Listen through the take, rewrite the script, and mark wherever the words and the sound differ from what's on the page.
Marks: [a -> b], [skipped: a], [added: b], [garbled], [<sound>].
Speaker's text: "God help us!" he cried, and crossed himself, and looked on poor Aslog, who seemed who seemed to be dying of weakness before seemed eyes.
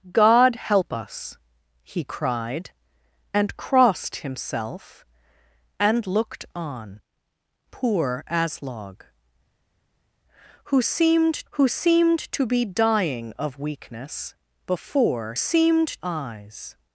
"God help us!" he cried, and crossed himself, and looked on poor Aslog, who seemed who seemed to be dying of weakness before seemed eyes.